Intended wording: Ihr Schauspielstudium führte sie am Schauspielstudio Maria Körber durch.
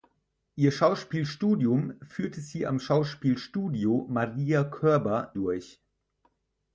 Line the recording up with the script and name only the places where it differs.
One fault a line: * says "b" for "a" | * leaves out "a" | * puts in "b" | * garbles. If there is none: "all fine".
all fine